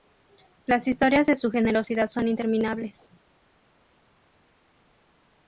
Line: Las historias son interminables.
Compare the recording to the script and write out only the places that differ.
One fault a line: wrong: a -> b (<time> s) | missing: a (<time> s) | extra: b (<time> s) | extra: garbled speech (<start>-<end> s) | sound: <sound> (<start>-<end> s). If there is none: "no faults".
extra: de su generosidad (1.3 s)